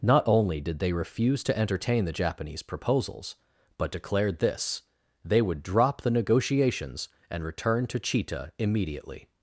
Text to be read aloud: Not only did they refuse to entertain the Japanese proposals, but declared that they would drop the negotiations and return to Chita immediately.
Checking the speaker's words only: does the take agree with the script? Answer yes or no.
no